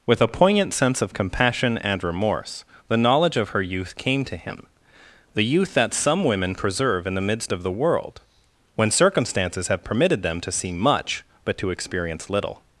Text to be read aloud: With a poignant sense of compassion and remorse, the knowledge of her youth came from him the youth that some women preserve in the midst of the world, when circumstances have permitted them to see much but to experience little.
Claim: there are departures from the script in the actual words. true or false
true